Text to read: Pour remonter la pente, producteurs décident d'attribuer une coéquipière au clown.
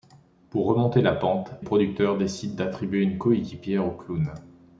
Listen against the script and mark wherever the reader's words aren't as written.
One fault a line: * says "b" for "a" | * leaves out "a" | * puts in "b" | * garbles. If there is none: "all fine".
all fine